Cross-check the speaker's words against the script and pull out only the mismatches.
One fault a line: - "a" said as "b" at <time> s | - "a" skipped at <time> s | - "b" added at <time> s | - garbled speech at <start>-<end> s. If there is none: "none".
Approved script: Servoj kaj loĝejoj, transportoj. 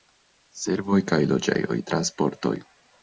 none